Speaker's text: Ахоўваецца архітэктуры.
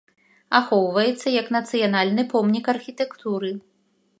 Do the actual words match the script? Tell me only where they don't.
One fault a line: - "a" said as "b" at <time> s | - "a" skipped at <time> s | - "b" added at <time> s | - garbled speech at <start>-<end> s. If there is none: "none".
- "як нацыянальны помнік" added at 1.4 s